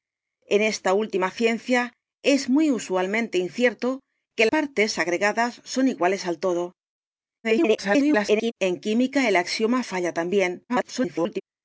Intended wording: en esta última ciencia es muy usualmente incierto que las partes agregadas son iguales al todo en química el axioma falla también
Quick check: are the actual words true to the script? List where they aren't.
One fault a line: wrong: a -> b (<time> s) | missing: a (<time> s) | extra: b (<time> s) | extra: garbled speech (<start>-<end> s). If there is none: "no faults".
missing: las (4.5 s)
extra: garbled speech (7.4-8.5 s)
extra: garbled speech (10.7-11.4 s)